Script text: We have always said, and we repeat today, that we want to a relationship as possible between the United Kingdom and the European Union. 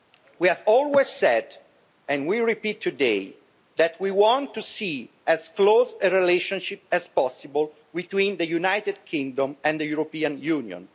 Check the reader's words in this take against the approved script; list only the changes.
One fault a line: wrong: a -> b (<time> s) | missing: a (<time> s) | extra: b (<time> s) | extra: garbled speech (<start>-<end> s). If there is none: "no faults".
extra: see as close (4.6 s)